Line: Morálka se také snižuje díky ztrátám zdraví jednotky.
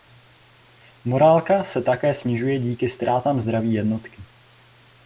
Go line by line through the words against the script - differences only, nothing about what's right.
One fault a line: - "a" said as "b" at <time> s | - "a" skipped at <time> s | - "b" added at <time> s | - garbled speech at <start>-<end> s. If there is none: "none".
none